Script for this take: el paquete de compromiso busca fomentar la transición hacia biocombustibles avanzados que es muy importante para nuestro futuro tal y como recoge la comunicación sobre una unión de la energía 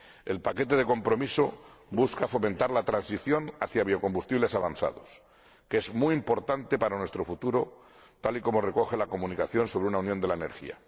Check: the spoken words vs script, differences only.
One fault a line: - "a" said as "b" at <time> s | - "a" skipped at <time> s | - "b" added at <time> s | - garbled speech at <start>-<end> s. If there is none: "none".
none